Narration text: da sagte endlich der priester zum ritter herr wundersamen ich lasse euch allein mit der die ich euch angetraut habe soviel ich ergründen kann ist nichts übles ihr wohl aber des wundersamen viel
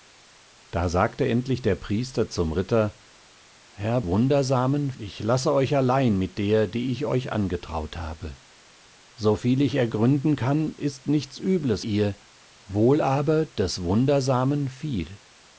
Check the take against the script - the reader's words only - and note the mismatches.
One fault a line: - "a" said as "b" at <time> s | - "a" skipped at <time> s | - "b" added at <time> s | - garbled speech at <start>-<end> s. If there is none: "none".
none